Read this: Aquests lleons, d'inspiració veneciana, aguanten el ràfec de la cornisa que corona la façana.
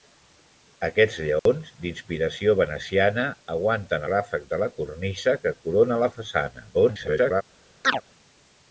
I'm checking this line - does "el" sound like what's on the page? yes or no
no